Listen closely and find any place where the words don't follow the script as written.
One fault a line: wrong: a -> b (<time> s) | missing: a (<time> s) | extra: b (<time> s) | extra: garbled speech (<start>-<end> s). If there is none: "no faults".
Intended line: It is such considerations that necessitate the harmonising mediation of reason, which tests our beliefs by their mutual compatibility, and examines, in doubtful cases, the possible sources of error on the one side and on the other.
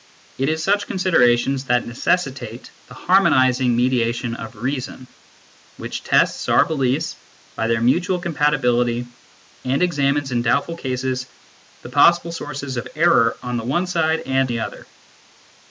missing: on (14.5 s)